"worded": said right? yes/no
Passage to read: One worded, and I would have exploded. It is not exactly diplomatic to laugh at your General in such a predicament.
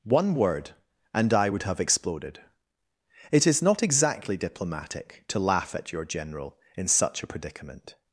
no